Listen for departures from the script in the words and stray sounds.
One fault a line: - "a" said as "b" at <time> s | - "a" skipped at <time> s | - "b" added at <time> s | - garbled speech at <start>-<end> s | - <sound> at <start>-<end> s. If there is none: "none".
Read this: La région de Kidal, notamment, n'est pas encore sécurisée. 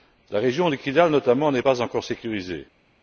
none